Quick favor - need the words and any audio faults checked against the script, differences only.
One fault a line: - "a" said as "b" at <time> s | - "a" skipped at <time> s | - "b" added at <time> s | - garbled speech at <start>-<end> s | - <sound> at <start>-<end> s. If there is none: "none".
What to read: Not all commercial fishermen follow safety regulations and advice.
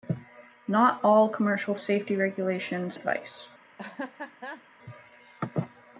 - "fishermen follow" skipped at 1.8 s
- "and" skipped at 3.0 s
- laugh at 3.8-4.6 s